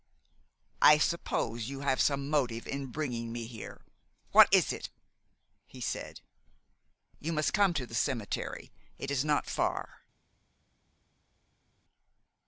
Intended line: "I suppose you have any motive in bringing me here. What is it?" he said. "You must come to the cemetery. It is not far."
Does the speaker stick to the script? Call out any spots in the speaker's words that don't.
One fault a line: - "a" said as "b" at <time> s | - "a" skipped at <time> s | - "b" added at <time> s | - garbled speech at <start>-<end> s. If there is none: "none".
- "any" said as "some" at 2.0 s